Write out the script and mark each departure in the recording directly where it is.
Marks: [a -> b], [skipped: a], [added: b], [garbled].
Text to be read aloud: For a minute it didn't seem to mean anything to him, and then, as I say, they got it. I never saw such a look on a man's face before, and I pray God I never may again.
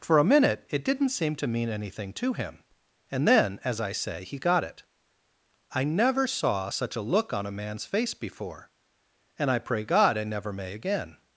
For a minute it didn't seem to mean anything to him, and then, as I say, [they -> he] got it. I never saw such a look on a man's face before, and I pray God I never may again.